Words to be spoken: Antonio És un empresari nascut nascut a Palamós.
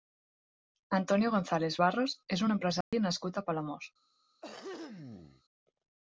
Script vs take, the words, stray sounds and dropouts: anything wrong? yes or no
yes